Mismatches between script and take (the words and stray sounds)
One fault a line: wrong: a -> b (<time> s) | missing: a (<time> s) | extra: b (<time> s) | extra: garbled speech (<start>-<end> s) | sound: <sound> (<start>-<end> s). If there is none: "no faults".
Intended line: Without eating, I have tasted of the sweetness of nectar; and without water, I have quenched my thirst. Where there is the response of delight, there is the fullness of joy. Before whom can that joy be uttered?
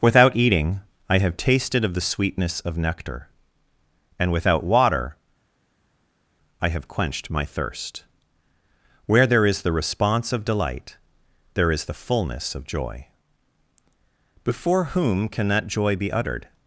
no faults